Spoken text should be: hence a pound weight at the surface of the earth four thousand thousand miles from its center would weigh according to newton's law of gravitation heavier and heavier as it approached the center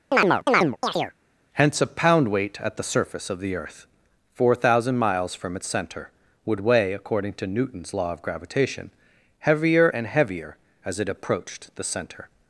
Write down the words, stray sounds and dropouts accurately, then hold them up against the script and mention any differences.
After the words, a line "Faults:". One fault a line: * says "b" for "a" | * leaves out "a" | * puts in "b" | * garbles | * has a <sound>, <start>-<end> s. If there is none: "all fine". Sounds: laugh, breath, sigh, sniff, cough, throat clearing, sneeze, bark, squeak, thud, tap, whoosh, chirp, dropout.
hence a pound weight at the surface of the earth four thousand miles from its center would weigh according to newton's law of gravitation heavier and heavier as it approached the center
Faults:
* has a chirp, 0.1-1.1 s
* leaves out "thousand"